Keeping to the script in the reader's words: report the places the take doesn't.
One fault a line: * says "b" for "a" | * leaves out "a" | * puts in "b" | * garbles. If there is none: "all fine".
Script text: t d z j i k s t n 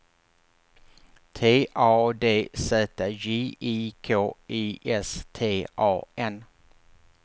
* puts in "a"
* puts in "i"
* puts in "a"